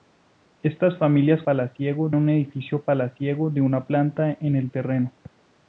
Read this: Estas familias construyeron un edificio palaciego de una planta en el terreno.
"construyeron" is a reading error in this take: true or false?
true